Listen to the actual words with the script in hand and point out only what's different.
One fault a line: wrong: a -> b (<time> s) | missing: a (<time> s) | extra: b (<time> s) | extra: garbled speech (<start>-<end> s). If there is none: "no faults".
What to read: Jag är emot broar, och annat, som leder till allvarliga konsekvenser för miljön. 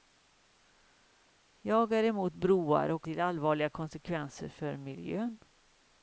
missing: annat som leder (3.1 s)